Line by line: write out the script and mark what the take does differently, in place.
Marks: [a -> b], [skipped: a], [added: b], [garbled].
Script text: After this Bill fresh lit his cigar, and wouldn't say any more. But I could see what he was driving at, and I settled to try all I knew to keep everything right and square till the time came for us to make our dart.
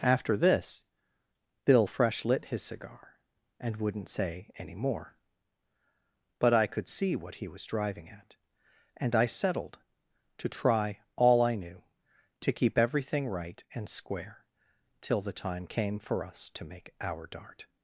After this Bill fresh lit his cigar, and wouldn't say any more. But I could see what he was driving at, and I settled to try all I knew to keep everything right and square till the time came for us to make our dart.